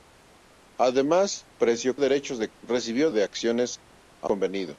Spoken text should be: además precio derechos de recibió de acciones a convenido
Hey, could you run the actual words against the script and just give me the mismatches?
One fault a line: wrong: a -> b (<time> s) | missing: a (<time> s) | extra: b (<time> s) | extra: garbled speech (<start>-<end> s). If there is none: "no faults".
no faults